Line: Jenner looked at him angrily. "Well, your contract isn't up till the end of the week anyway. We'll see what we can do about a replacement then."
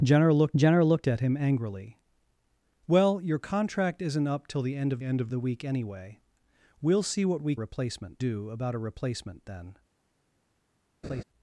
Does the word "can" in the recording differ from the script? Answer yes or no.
yes